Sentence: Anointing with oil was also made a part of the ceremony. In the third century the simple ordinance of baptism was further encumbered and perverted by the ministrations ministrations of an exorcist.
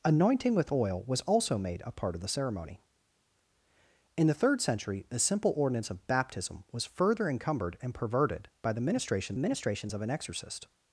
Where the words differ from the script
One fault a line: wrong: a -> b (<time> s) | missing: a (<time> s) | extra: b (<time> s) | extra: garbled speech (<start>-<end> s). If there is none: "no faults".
no faults